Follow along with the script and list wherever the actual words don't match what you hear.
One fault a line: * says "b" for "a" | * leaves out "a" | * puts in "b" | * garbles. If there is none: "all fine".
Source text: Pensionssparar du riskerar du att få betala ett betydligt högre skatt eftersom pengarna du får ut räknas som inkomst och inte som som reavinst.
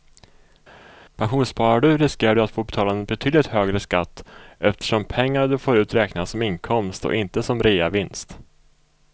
* says "en" for "ett"
* leaves out "som"